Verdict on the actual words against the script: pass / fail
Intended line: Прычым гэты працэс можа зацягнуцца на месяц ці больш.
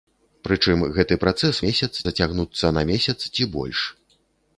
fail